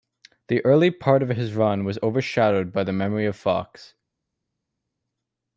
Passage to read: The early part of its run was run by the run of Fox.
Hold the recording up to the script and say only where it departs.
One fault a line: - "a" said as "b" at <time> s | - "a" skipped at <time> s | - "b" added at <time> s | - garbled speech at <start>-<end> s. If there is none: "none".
- "its" said as "his" at 1.3 s
- "run" said as "overshadowed" at 2.0 s
- "run" said as "memory" at 2.9 s